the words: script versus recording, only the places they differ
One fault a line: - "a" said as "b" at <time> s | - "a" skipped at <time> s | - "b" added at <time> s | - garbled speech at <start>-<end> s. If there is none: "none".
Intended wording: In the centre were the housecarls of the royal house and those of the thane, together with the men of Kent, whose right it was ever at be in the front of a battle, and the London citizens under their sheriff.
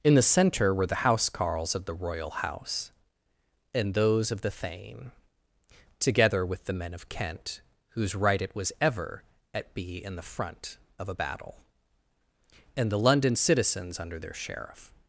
none